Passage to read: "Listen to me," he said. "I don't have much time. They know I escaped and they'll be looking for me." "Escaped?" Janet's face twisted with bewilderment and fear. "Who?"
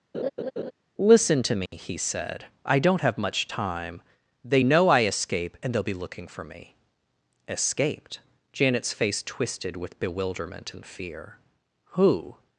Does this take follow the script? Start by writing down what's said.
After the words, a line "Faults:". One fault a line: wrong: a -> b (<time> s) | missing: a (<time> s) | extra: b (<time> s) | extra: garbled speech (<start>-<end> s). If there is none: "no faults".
"Listen to me," he said. "I don't have much time. They know I escape and they'll be looking for me." "Escaped?" Janet's face twisted with bewilderment and fear. "Who?"
Faults:
wrong: escaped -> escape (5.1 s)